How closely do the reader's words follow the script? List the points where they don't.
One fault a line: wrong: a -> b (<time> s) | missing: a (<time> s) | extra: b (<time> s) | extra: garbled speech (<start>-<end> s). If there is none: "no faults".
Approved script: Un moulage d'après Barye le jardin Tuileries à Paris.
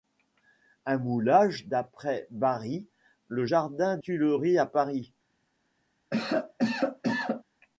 no faults